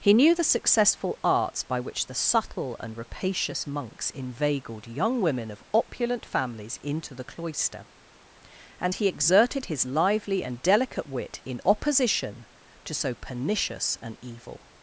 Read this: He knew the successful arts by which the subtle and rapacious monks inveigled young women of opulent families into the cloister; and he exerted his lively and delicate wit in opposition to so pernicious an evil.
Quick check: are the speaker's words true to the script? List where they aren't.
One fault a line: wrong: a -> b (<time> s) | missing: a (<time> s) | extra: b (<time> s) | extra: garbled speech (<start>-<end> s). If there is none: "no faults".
no faults